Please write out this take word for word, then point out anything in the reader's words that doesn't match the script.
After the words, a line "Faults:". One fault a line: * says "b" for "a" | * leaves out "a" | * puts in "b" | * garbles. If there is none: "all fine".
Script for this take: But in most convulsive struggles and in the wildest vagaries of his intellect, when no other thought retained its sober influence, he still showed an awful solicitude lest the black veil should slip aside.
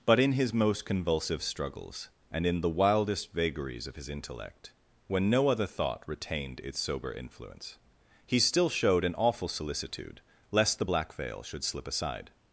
But in his most convulsive struggles and in the wildest vagaries of his intellect, when no other thought retained its sober influence, he still showed an awful solicitude lest the black veil should slip aside.
Faults:
* puts in "his"